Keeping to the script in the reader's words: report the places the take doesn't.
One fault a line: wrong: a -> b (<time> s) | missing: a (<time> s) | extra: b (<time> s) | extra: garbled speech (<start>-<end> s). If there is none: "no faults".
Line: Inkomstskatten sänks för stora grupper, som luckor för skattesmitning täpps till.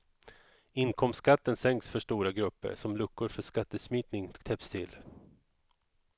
no faults